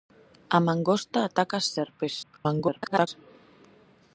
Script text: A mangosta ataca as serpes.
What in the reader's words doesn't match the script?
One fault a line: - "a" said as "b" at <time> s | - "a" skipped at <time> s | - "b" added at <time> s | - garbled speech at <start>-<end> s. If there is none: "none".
- garbled speech at 2.2-3.1 s